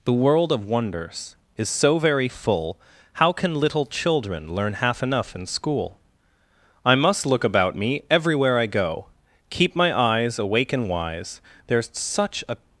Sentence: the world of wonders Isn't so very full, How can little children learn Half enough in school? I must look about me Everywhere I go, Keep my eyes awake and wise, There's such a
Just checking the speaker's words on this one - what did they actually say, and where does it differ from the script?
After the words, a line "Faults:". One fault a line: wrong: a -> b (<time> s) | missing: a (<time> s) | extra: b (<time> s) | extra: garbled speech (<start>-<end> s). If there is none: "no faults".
the world of wonders Is so very full, How can little children learn Half enough in school? I must look about me Everywhere I go, Keep my eyes awake and wise, There's such a
Faults:
wrong: Isn't -> Is (1.6 s)